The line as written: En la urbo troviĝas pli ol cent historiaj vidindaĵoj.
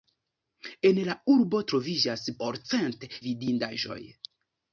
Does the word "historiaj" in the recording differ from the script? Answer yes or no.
yes